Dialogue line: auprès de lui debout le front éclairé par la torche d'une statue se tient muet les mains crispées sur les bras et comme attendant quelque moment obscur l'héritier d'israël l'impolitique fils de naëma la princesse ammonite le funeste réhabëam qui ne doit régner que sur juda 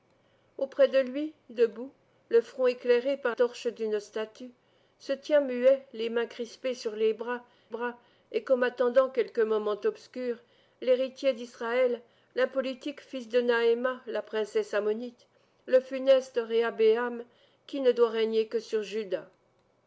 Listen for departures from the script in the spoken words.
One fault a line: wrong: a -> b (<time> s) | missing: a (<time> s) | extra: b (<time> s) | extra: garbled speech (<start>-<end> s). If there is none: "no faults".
missing: la (3.4 s)
extra: bras (7.7 s)